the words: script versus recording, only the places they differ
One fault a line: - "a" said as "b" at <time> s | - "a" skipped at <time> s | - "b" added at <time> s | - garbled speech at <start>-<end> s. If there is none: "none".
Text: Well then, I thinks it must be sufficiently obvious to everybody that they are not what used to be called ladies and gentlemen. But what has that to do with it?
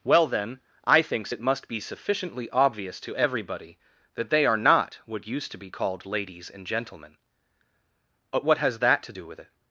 none